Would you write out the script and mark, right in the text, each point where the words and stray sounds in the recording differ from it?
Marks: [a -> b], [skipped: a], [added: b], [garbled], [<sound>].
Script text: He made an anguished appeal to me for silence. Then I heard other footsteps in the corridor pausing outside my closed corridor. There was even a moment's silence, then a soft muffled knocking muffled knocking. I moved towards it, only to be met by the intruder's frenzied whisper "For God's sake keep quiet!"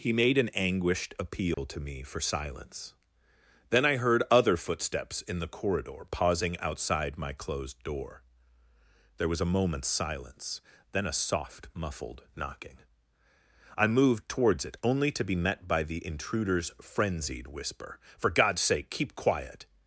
He made an anguished appeal [dropout] to me for silence. Then I heard other footsteps in the corridor pausing outside my closed [corridor. -> door] There was [skipped: even] a moment's silence, then a soft muffled knocking [skipped: muffled knocking.] I moved towards it, only to be met by the intruder's frenzied whisper "For God's sake keep quiet!"